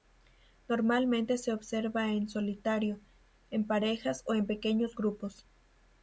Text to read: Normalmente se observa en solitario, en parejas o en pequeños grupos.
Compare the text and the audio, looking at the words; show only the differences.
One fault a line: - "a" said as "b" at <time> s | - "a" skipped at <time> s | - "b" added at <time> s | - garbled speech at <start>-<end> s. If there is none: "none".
none